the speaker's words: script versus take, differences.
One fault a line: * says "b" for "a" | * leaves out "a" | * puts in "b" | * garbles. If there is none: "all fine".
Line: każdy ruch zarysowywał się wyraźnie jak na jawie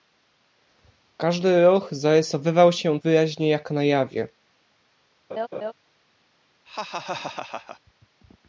all fine